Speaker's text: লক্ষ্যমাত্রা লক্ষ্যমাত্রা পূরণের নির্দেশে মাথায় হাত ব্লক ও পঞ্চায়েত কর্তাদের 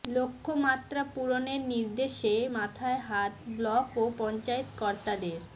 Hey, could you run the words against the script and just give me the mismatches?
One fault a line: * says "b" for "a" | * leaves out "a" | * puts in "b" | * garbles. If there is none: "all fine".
* leaves out "লক্ষ্যমাত্রা"